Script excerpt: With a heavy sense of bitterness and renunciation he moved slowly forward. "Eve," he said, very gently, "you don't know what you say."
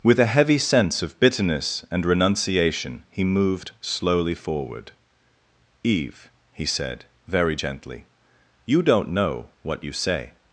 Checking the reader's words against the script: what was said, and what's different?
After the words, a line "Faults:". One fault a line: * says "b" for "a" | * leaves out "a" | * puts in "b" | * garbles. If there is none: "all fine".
With a heavy sense of bitterness and renunciation he moved slowly forward. "Eve," he said, very gently, "you don't know what you say."
Faults:
all fine